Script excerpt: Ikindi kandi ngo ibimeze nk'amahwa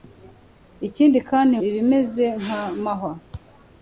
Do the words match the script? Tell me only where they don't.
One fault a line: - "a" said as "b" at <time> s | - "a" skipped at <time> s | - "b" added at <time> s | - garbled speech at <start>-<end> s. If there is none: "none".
- "ngo" skipped at 1.6 s